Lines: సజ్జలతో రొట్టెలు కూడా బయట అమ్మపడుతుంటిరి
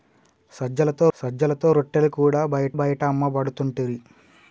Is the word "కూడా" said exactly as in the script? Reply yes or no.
yes